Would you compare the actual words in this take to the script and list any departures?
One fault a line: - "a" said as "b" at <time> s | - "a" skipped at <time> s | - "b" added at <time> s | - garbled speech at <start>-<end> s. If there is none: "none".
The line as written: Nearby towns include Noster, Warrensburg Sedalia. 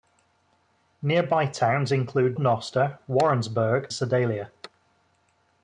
none